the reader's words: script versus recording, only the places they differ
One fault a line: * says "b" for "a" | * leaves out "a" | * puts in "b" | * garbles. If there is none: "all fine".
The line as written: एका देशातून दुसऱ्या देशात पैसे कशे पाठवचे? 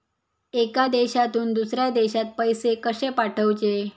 all fine